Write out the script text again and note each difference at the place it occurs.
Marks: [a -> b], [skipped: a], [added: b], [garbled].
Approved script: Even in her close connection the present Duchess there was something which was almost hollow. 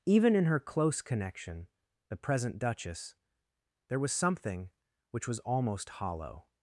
Even in her close connection the present Duchess there was something which was almost hollow.